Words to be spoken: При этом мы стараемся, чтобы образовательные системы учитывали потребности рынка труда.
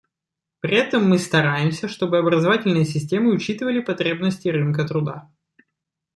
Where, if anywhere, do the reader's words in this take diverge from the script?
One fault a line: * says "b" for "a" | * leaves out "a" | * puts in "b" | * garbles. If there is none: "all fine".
all fine